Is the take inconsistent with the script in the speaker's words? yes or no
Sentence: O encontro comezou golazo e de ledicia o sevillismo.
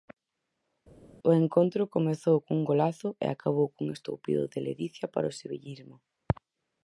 yes